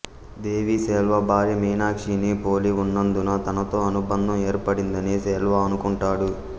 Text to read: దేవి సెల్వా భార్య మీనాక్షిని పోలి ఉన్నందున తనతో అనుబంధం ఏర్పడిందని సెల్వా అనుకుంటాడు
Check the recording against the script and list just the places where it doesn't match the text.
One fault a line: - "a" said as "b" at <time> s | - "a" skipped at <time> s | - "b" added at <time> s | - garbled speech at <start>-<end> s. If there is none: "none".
none